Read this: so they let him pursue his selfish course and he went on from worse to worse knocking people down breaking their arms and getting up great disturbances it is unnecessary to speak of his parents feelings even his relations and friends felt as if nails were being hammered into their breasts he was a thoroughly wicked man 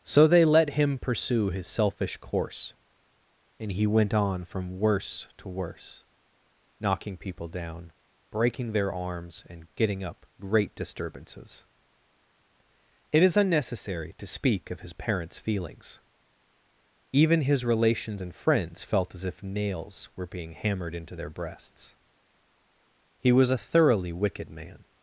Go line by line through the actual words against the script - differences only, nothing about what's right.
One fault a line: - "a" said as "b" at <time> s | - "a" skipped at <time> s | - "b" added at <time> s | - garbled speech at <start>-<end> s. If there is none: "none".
none